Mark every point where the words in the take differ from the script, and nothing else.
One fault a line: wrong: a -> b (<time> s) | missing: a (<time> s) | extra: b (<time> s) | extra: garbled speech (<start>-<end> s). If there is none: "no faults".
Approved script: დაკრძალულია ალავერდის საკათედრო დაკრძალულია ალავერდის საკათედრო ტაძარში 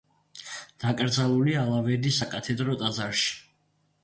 missing: დაკრძალულია ალავერდის საკათედრო (2.8 s)